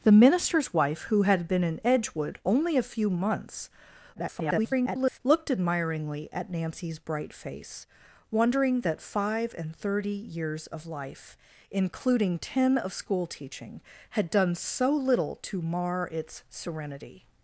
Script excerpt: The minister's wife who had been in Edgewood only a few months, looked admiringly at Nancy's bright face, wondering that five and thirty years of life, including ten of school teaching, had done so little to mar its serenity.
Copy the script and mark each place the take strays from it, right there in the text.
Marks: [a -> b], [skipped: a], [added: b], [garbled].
The minister's wife who had been in Edgewood only a few months, [garbled] looked admiringly at Nancy's bright face, wondering that five and thirty years of life, including ten of school teaching, had done so little to mar its serenity.